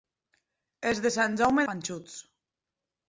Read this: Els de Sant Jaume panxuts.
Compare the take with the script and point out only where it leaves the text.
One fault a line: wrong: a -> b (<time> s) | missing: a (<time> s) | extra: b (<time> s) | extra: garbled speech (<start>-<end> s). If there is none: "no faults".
no faults